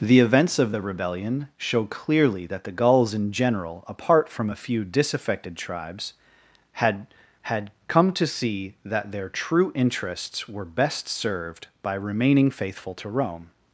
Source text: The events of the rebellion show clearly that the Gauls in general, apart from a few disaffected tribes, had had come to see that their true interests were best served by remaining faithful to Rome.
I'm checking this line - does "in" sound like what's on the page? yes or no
yes